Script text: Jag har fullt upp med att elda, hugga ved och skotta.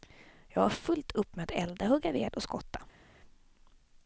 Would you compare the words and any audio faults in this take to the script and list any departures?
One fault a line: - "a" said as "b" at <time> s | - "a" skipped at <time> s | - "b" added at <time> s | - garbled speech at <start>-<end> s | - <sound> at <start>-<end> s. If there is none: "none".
none